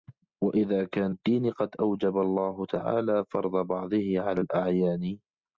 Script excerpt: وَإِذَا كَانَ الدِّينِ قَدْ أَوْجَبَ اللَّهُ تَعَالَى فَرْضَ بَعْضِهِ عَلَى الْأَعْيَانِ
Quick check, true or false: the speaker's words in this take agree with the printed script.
true